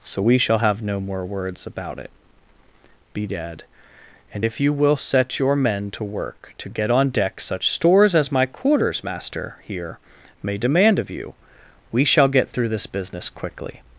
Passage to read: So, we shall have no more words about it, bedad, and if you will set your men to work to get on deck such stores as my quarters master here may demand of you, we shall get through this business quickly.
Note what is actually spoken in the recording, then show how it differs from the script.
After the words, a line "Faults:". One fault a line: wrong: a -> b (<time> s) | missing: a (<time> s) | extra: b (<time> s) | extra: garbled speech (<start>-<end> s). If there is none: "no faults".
So, we shall have no more words about it, bedad, and if you will set your men to work to get on deck such stores as my quarters master here may demand of you, we shall get through this business quickly.
Faults:
no faults